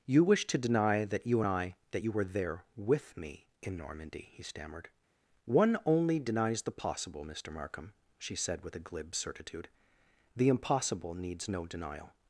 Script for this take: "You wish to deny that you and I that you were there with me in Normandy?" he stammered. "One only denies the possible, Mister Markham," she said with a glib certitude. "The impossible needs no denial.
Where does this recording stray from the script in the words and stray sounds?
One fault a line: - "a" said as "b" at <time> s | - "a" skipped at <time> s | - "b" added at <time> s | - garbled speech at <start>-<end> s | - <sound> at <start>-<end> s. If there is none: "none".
none